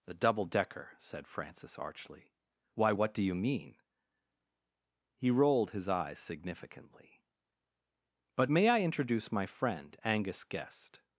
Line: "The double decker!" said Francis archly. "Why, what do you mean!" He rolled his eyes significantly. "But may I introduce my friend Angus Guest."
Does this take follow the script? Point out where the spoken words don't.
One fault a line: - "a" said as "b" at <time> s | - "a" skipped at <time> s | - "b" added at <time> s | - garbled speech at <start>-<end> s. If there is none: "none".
none